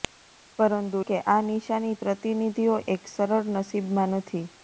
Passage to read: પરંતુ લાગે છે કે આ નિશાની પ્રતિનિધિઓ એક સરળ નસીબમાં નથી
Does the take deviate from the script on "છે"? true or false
true